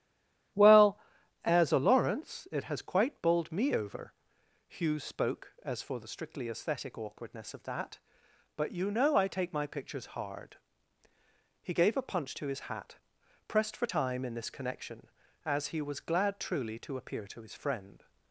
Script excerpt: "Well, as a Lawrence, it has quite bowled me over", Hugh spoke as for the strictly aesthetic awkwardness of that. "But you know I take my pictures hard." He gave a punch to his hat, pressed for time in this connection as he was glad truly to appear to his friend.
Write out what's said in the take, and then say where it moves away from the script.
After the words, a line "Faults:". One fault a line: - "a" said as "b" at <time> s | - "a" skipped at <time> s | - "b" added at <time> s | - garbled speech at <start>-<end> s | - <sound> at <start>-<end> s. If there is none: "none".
"Well, as a Lawrence, it has quite bowled me over", Hugh spoke as for the strictly aesthetic awkwardness of that. "But you know I take my pictures hard." He gave a punch to his hat, pressed for time in this connection as he was glad truly to appear to his friend.
Faults:
none